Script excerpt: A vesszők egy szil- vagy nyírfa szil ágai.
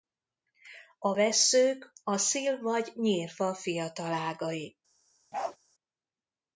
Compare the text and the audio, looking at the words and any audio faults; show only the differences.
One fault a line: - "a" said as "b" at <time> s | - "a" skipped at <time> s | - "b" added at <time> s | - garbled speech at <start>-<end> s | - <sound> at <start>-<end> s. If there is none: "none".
- "egy" said as "a" at 2.0 s
- "szil" said as "fiatal" at 3.5 s
- bark at 5.3-5.6 s